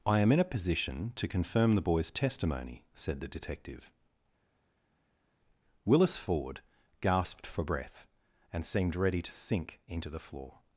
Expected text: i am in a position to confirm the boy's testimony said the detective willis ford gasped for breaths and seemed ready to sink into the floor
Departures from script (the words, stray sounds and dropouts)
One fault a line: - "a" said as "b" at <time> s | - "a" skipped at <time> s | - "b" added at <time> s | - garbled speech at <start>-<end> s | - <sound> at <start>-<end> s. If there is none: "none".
- "breaths" said as "breath" at 7.6 s